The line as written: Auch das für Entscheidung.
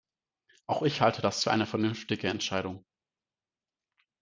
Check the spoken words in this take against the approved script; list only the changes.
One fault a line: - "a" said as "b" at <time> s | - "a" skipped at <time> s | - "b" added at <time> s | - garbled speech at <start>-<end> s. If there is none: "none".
- "ich halte" added at 0.8 s
- "eine vernünftige" added at 1.5 s